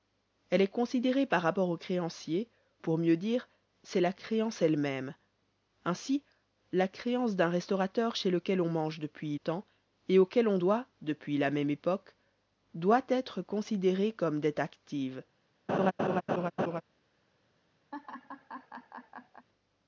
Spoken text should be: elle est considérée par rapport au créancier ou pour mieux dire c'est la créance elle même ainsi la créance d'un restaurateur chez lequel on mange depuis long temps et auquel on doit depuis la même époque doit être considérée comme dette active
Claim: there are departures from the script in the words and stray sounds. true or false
true